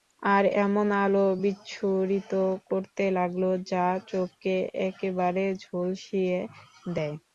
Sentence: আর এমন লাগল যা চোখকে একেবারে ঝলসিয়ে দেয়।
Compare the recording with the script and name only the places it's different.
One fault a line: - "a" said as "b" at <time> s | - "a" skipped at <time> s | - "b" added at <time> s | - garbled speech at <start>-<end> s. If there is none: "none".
- "আলো বিচ্ছুরিত করতে" added at 1.0 s